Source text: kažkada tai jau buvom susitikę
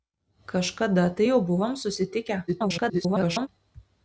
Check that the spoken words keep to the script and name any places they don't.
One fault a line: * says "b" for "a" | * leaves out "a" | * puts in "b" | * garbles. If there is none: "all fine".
* garbles